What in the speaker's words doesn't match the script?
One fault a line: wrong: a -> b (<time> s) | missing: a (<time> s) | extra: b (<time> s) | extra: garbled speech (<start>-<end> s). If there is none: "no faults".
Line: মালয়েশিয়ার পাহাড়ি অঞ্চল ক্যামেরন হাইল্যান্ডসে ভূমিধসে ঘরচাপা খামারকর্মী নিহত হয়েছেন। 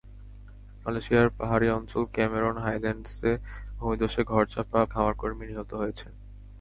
no faults